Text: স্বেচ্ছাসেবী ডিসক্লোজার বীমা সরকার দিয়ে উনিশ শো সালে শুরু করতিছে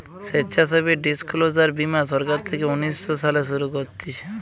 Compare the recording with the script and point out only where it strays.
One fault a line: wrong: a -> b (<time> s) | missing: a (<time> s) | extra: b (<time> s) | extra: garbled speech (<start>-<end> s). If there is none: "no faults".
wrong: দিয়ে -> থেকে (2.5 s)